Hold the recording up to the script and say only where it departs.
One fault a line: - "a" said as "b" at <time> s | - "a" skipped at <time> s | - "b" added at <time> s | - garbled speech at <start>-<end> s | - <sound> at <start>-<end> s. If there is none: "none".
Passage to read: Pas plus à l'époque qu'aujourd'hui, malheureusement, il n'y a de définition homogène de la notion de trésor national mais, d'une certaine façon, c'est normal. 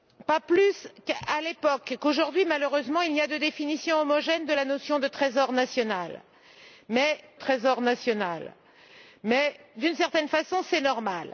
- "trésor national mais" added at 7.3 s